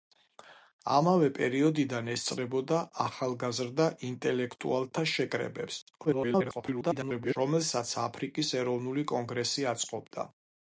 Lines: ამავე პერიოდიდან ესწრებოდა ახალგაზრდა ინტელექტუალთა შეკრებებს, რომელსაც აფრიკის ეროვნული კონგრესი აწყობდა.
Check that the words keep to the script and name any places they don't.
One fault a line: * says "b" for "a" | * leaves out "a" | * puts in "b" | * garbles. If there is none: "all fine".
* garbles